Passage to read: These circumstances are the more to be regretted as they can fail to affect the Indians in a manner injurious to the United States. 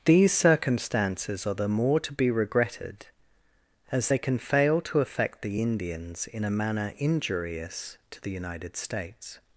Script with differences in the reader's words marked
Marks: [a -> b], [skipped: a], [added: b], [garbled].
These circumstances are the more to be regretted as they can fail to affect the Indians in a manner injurious to the United States.